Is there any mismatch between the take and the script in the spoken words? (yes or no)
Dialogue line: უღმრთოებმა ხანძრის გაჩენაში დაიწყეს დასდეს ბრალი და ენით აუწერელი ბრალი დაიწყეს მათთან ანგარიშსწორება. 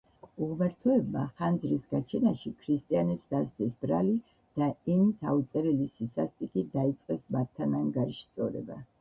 yes